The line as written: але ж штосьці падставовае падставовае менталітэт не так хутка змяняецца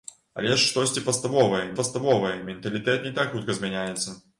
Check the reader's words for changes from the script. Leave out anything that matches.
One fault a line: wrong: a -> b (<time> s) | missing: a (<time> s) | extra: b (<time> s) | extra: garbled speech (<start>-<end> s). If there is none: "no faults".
no faults